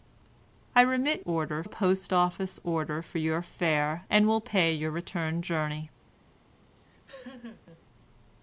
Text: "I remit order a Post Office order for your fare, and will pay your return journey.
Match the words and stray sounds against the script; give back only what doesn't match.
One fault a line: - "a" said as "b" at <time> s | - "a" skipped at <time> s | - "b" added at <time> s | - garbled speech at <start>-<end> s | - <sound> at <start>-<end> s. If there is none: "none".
- laugh at 6.7-7.8 s